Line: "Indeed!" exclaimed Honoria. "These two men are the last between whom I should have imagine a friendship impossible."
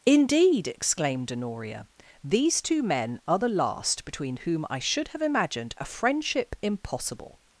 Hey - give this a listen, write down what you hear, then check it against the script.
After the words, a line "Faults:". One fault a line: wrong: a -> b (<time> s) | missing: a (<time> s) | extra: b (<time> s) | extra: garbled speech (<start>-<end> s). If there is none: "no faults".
"Indeed!" exclaimed Honoria. "These two men are the last between whom I should have imagined a friendship impossible."
Faults:
wrong: imagine -> imagined (5.2 s)